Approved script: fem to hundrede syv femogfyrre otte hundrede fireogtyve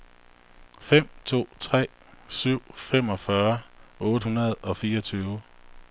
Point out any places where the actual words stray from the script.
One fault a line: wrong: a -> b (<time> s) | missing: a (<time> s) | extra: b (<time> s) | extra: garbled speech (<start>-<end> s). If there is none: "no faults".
wrong: hundrede -> tre (1.6 s)
extra: og (4.5 s)